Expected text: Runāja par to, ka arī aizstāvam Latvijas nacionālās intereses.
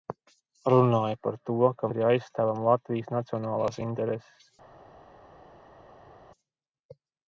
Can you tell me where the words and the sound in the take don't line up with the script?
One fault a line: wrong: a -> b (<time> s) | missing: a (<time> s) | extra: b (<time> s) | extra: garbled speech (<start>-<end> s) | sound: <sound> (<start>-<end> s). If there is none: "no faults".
no faults